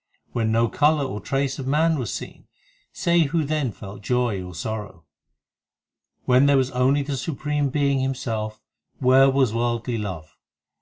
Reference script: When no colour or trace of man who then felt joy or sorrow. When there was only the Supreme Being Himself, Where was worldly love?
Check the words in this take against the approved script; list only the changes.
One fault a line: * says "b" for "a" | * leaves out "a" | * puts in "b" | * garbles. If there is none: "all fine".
* puts in "was seen Say"